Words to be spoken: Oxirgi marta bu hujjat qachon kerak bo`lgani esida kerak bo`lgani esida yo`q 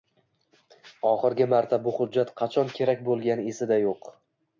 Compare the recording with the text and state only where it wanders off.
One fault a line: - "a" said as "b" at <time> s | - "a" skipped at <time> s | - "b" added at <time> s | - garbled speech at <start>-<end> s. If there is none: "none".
- "kerak bo`lgani esida" skipped at 3.8 s